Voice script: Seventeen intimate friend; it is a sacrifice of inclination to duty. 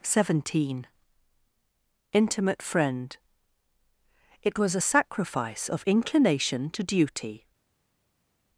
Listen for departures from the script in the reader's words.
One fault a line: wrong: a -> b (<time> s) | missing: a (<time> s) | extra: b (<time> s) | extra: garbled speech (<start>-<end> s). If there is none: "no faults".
wrong: is -> was (4.6 s)